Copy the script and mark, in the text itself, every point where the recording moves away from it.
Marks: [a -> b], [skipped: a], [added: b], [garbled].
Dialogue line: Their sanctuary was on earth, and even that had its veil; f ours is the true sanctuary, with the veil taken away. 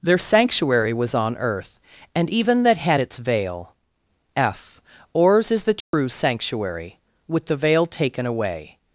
Their sanctuary was on earth, and even that had its veil; f ours is the true sanctuary, with the veil taken away.